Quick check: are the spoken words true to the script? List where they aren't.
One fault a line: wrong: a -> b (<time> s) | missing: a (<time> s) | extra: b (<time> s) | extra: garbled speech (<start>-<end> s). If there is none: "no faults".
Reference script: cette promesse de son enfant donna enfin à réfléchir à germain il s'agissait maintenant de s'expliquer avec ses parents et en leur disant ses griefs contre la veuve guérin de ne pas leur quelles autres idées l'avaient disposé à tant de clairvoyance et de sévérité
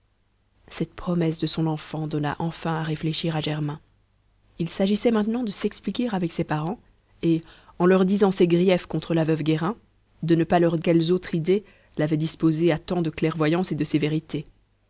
no faults